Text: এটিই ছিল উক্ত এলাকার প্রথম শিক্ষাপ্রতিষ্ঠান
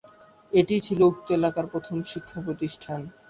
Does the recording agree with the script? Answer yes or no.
yes